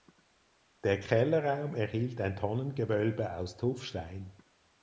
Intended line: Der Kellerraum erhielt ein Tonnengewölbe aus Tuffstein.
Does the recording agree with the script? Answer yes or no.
yes